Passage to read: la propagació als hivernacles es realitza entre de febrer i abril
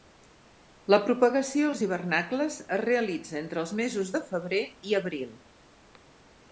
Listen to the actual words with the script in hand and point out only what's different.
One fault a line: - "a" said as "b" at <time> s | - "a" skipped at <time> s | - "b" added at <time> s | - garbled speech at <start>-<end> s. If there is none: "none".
- "els mesos" added at 3.7 s